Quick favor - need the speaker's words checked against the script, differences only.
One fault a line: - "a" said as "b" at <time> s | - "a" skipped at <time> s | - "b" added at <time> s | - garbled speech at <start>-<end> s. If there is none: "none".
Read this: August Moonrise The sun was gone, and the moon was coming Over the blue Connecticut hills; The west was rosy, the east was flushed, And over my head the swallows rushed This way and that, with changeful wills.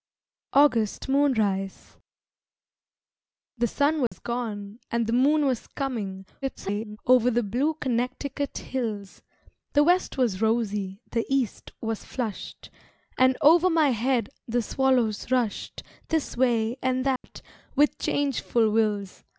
- garbled speech at 6.4-7.0 s